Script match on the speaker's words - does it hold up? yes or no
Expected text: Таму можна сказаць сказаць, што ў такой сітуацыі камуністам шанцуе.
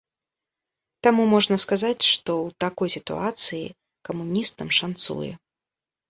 no